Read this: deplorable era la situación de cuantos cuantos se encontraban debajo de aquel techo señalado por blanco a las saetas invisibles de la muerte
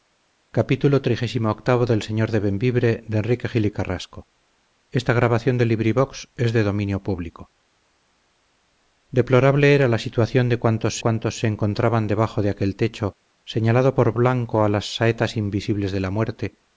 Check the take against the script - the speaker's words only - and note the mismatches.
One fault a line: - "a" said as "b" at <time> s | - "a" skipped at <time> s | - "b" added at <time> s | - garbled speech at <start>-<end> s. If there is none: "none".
none